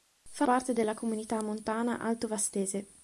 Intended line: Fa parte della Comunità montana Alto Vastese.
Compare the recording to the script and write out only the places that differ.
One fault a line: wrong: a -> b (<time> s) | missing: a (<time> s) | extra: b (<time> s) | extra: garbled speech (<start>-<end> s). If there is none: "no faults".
no faults